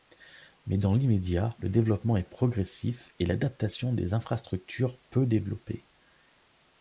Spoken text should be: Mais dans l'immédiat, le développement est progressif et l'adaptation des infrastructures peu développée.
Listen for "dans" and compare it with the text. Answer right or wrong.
right